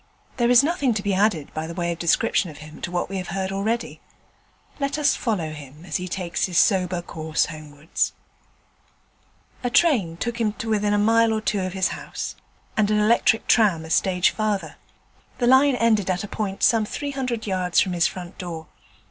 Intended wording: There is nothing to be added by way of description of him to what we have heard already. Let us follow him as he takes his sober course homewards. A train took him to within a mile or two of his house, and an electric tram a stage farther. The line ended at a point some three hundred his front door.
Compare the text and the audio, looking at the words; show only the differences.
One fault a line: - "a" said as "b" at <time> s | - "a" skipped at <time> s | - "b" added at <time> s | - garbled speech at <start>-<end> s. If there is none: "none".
- "yards from" added at 17.5 s